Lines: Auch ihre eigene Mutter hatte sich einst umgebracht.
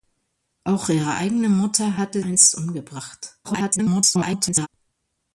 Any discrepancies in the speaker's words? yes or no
yes